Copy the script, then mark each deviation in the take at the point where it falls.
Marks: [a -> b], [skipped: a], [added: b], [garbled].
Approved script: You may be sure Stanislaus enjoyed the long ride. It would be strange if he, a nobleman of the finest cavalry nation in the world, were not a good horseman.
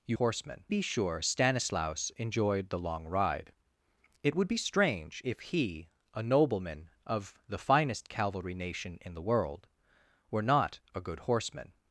You [may -> horseman] be sure Stanislaus enjoyed the long ride. It would be strange if he, a nobleman of the finest cavalry nation in the world, were not a good horseman.